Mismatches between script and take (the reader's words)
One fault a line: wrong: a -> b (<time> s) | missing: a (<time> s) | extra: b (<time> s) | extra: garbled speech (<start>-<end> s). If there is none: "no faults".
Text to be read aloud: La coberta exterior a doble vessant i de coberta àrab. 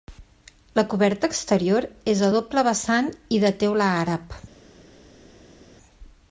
extra: és (2.1 s)
wrong: coberta -> teula (3.7 s)